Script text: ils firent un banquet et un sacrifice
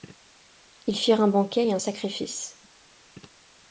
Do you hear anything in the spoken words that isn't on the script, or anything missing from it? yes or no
no